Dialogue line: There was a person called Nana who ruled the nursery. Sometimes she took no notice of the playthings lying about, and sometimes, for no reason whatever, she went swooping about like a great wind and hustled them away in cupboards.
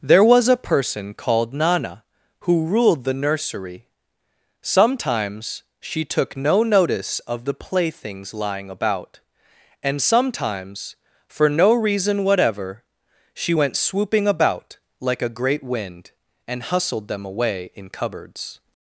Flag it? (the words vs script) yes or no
no